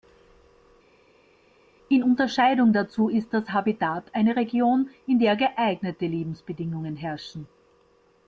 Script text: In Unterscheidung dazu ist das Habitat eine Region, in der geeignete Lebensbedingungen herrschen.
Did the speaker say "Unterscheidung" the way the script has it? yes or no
yes